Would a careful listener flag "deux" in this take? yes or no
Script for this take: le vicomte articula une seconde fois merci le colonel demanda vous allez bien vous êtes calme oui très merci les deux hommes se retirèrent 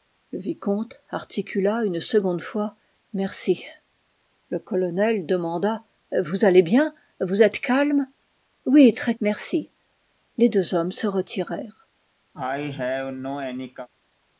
no